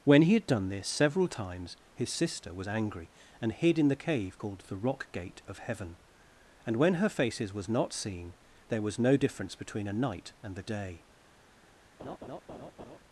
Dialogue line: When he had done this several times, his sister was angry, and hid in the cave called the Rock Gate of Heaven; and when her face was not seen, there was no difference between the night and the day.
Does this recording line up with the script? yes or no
no